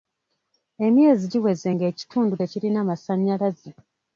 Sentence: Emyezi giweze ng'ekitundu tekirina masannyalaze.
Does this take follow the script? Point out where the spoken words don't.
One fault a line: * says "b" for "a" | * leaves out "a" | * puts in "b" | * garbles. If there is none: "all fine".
all fine